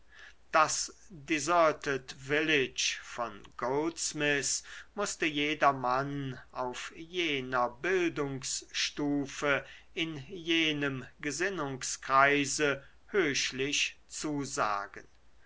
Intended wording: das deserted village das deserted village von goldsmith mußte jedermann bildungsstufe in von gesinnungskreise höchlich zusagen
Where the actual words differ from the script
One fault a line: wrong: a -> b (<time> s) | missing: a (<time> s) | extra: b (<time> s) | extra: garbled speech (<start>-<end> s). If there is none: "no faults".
missing: das deserted village (3.0 s)
extra: auf jener (6.5 s)
wrong: von -> jenem (10.3 s)